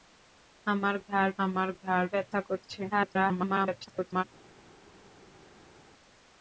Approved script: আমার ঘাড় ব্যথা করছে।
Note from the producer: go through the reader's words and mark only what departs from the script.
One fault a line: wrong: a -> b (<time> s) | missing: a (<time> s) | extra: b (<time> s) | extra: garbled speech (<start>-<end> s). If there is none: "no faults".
extra: আমার ঘাড় (1.4 s)
extra: garbled speech (2.9-4.2 s)